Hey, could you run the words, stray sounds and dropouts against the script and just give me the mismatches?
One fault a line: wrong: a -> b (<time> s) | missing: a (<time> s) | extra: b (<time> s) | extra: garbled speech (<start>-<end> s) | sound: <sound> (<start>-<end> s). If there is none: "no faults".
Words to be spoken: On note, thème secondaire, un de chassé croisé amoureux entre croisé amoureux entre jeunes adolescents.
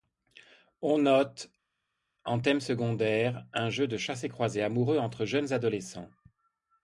extra: en (2.2 s)
extra: jeu (3.7 s)
missing: croisé amoureux entre (5.2 s)